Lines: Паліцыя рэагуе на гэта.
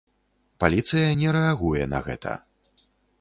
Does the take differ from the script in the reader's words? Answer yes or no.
yes